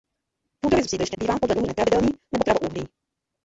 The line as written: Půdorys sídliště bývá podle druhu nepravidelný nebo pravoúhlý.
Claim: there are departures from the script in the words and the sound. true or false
false